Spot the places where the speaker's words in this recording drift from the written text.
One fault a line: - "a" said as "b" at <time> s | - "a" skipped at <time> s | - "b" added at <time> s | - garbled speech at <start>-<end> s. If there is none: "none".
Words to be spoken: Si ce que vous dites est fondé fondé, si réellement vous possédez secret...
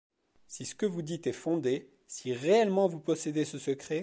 - "fondé" skipped at 1.9 s
- "ce" added at 3.5 s